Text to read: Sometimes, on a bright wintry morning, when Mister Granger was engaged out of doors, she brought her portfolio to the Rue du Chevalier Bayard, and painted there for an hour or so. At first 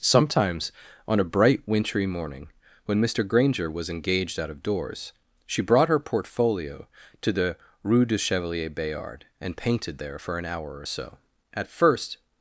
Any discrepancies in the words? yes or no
no